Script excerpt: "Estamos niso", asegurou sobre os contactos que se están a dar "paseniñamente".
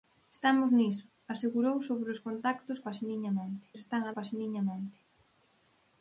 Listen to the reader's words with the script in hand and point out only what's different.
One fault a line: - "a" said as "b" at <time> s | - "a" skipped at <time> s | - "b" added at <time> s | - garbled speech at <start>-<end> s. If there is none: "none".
- "que" said as "paseniñamente" at 2.9 s
- "dar" skipped at 4.1 s